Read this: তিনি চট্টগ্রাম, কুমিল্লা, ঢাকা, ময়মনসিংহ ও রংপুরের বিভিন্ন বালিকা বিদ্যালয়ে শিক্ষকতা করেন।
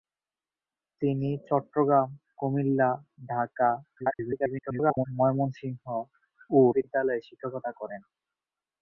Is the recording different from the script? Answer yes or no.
yes